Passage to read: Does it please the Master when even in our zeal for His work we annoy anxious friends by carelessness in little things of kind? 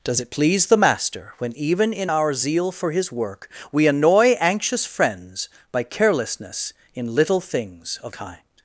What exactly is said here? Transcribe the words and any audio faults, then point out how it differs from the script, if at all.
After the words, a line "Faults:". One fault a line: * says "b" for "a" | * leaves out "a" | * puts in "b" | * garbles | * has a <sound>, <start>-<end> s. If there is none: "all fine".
Does it please the Master when even in our zeal for His work we annoy anxious friends by carelessness in little things of kind?
Faults:
all fine